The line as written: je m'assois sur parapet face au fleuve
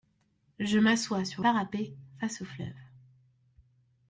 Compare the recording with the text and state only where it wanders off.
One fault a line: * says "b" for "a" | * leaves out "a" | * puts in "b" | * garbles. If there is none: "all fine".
all fine